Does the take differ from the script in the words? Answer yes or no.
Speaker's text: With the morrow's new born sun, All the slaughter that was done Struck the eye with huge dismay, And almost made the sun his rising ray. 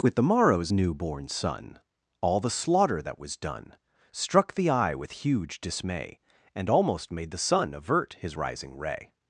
yes